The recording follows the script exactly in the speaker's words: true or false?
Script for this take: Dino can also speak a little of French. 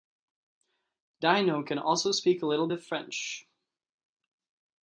true